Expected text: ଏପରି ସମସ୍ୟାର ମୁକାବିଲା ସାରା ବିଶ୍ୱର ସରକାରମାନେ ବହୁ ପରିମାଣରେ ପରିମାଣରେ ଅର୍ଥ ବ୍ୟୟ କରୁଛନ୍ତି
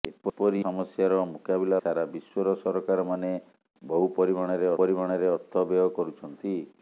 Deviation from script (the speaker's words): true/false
false